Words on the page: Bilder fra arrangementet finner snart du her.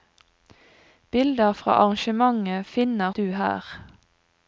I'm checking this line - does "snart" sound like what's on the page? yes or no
no